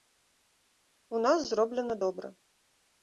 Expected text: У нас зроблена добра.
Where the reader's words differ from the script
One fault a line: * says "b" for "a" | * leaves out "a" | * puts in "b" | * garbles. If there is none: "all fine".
all fine